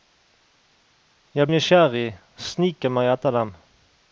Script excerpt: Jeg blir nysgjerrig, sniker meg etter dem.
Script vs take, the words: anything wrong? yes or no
yes